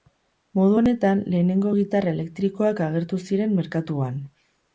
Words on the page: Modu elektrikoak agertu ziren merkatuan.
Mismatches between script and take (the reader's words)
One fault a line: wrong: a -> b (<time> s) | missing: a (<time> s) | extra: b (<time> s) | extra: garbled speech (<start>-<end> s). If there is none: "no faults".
extra: honetan lehenengo gitarra (0.8 s)